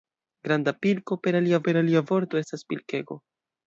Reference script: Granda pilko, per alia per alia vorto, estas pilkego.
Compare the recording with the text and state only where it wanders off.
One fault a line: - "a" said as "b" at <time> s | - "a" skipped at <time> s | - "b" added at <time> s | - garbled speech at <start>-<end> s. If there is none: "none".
none